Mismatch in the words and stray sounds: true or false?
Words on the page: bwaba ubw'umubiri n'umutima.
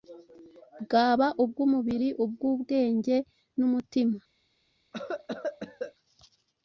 true